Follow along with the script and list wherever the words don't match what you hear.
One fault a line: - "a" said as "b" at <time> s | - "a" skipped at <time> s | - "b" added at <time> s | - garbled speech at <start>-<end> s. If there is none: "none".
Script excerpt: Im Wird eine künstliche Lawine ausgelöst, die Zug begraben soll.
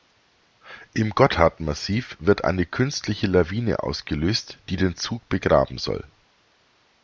- "Gotthardmassiv" added at 1.1 s
- "den" added at 4.8 s